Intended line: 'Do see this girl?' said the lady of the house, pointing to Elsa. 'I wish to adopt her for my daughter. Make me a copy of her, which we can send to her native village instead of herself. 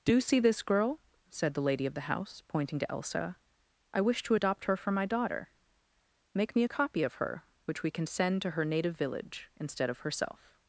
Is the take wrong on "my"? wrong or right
right